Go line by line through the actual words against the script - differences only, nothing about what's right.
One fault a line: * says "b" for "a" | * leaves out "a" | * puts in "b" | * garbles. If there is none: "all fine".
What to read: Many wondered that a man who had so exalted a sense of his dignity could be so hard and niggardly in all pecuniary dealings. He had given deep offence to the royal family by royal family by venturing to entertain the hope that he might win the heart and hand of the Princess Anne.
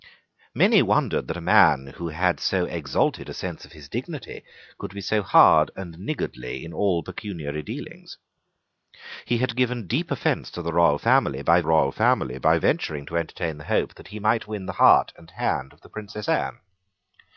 all fine